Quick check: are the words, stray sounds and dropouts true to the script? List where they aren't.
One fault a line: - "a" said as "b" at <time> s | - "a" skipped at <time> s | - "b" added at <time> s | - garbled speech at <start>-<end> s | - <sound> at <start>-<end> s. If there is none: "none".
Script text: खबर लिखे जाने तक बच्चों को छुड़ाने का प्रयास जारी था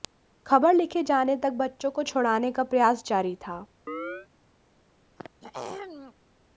- chirp at 3.9-4.3 s
- throat clearing at 5.2-6.1 s